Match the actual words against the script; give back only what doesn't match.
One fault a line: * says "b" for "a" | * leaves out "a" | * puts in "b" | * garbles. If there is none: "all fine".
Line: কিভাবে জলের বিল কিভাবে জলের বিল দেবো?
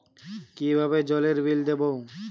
* leaves out "কিভাবে জলের বিল"